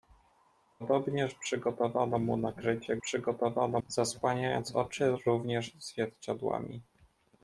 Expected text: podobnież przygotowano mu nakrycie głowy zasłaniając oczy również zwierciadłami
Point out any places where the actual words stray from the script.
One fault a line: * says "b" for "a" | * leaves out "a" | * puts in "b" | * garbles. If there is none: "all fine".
* says "przygotowano" for "głowy"